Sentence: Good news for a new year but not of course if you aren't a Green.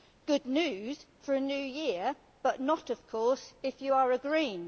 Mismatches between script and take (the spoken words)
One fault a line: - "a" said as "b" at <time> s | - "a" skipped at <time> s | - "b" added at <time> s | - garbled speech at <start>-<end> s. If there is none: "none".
- "aren't" said as "are" at 3.9 s